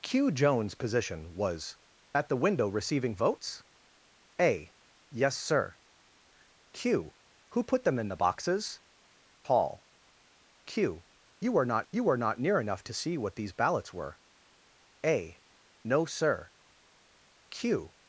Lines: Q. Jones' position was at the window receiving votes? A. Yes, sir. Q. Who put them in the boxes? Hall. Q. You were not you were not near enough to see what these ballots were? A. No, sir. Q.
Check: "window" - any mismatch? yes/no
no